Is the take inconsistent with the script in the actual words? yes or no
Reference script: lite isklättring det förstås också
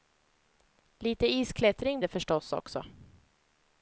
no